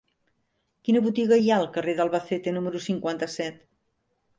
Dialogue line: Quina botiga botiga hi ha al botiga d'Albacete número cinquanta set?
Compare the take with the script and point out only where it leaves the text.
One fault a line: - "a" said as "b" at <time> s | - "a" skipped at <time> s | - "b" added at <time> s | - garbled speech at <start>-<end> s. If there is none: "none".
- "botiga" skipped at 1.4 s
- "botiga" said as "carrer" at 1.8 s